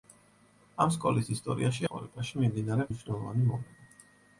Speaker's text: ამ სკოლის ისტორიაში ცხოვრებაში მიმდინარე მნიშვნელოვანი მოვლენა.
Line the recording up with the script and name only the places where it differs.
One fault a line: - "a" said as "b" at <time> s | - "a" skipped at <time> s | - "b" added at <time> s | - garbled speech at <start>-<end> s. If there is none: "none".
none